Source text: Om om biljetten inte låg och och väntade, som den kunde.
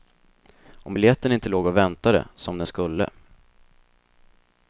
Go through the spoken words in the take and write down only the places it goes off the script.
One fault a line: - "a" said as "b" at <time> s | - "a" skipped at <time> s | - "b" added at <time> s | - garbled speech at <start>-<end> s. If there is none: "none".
- "om" skipped at 0.9 s
- "och" skipped at 1.8 s
- "kunde" said as "skulle" at 2.6 s